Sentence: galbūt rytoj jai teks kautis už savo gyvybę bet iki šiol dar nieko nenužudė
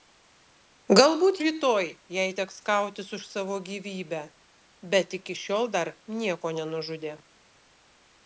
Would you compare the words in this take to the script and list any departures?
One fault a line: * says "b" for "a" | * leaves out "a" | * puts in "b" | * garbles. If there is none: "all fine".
all fine